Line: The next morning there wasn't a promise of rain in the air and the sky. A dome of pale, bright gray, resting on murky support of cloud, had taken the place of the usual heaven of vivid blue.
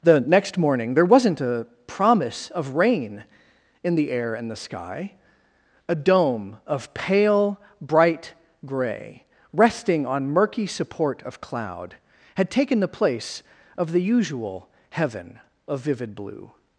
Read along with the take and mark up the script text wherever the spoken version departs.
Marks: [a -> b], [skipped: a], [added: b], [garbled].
The next morning there wasn't a promise of rain in the air and the sky. A dome of pale, bright gray, resting on murky support of cloud, had taken the place of the usual heaven of vivid blue.